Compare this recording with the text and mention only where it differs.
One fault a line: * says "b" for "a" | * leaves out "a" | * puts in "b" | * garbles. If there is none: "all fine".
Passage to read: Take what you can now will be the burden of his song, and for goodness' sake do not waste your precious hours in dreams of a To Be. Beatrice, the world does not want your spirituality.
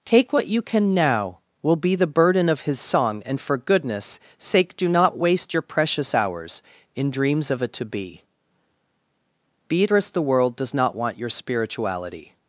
all fine